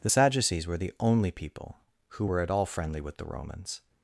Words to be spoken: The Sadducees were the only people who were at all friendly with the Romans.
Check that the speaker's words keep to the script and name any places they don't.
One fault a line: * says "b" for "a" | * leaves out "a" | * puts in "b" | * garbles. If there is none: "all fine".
all fine